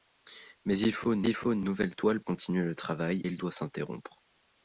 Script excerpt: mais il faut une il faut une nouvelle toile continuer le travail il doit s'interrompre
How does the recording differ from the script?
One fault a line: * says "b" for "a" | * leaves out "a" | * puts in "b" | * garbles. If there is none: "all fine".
all fine